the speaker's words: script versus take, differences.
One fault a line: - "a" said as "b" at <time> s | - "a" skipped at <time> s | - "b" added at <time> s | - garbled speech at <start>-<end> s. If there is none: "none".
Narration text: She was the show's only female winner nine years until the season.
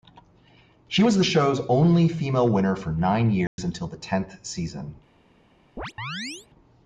- "for" added at 2.7 s
- "tenth" added at 4.0 s